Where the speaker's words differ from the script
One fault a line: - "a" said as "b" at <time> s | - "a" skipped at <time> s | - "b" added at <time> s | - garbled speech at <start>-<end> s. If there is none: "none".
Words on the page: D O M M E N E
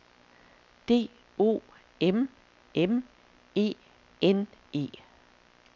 none